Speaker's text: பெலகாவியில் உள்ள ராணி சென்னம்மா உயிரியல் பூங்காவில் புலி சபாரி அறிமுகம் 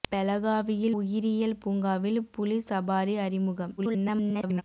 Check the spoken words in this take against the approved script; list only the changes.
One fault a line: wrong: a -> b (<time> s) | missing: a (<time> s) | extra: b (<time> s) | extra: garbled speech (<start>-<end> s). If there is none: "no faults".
missing: உள்ள ராணி சென்னம்மா (0.9 s)
extra: garbled speech (3.8-4.6 s)